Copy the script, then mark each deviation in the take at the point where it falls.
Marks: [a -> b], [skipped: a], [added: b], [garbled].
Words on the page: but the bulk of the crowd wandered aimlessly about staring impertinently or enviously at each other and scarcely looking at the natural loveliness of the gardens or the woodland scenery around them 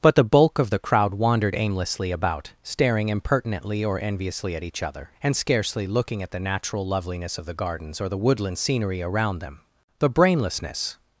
but the bulk of the crowd wandered aimlessly about staring impertinently or enviously at each other and scarcely looking at the natural loveliness of the gardens or the woodland scenery around them [added: the brainlessness]